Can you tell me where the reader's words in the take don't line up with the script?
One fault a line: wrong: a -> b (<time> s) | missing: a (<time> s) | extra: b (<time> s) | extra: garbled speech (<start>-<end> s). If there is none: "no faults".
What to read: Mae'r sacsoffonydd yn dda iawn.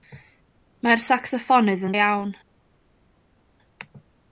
missing: dda (1.9 s)